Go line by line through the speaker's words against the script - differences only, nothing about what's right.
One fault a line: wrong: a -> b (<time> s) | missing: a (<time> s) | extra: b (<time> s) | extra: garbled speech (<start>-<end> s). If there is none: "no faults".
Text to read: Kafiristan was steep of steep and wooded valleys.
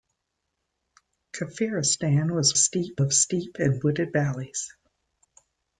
no faults